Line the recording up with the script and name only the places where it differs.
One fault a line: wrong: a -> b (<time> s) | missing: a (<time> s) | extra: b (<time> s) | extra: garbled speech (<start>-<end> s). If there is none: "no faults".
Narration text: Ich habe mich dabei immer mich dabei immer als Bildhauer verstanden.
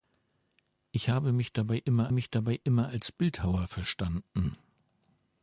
no faults